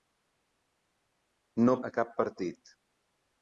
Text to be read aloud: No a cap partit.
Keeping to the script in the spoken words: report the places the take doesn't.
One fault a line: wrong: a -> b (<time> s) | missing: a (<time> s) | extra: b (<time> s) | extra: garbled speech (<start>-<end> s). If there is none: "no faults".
no faults